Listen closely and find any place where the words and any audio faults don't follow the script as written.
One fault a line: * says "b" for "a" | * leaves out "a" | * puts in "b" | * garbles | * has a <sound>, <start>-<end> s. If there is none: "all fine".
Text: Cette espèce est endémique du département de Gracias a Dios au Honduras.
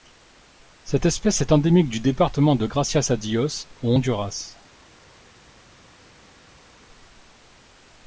all fine